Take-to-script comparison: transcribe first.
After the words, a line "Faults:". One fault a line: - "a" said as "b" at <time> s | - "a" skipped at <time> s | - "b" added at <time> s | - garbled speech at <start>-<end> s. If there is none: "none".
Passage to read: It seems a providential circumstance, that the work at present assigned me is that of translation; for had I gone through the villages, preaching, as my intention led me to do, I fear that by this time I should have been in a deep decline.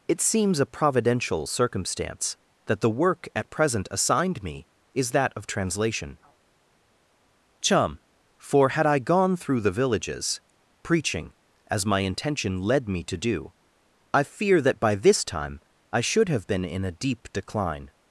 It seems a providential circumstance, that the work at present assigned me is that of translation; chum for had I gone through the villages, preaching, as my intention led me to do, I fear that by this time I should have been in a deep decline.
Faults:
- "chum" added at 7.6 s